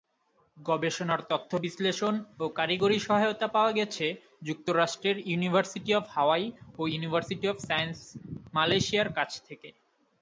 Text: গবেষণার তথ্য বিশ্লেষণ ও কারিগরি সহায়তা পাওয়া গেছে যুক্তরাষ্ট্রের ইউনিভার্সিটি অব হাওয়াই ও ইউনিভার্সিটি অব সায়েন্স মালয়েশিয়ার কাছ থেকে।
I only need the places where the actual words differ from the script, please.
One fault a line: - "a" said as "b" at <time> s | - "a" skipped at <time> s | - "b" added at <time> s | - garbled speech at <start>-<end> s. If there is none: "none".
none